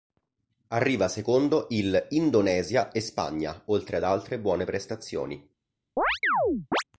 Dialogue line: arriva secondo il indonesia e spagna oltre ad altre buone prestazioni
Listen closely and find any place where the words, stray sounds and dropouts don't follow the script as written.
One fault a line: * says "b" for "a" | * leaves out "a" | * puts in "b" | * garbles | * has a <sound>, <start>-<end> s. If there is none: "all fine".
* has a chirp, 6.0-6.8 s